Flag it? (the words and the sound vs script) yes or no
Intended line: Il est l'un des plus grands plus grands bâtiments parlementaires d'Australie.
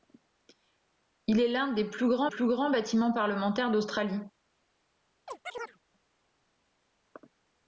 yes